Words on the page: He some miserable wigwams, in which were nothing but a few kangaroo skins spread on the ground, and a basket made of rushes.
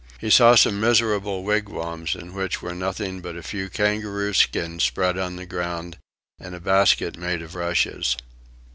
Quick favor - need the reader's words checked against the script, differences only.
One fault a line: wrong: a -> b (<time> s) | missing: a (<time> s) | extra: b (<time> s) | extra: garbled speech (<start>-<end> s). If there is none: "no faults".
extra: saw (0.3 s)